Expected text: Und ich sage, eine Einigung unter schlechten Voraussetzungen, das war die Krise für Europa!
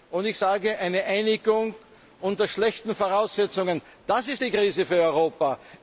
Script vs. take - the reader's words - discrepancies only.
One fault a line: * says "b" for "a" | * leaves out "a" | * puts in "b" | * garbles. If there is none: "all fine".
* says "ist" for "war"